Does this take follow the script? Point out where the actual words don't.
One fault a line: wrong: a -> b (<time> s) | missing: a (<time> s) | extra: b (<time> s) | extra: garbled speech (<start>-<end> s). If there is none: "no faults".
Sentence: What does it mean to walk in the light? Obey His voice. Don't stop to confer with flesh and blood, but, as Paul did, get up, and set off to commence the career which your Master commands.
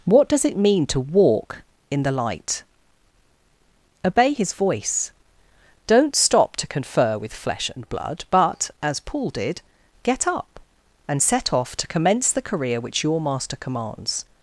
no faults